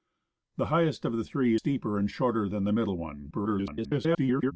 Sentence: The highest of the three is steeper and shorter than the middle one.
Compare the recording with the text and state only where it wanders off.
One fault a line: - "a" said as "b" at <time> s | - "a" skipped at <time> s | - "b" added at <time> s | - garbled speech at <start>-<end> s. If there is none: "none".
- "is" skipped at 1.6 s
- garbled speech at 3.3-4.5 s